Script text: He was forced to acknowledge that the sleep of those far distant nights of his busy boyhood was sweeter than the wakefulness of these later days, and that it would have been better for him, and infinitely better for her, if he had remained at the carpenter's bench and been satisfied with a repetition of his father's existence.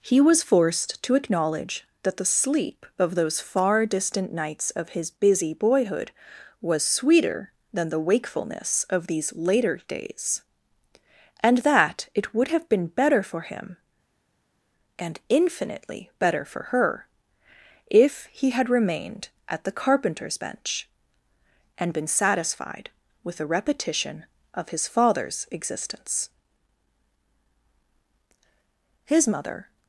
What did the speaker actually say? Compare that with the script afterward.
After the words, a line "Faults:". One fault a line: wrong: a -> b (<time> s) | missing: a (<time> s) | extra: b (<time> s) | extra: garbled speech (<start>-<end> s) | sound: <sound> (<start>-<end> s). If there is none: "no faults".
He was forced to acknowledge that the sleep of those far distant nights of his busy boyhood was sweeter than the wakefulness of these later days, and that it would have been better for him, and infinitely better for her, if he had remained at the carpenter's bench and been satisfied with a repetition of his father's existence. His mother
Faults:
extra: His mother (29.0 s)